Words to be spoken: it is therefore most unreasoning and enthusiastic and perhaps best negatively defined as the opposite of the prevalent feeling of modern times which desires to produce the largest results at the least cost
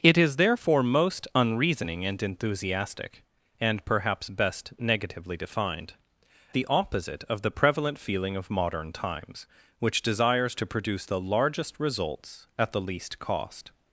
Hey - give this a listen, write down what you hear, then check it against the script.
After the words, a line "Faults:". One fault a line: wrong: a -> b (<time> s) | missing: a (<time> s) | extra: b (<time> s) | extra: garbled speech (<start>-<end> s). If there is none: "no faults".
it is therefore most unreasoning and enthusiastic and perhaps best negatively defined the opposite of the prevalent feeling of modern times which desires to produce the largest results at the least cost
Faults:
missing: as (5.9 s)